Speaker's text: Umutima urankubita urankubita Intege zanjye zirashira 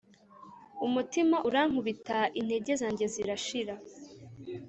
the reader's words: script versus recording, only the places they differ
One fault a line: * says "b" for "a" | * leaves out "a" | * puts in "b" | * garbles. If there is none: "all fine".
* leaves out "urankubita"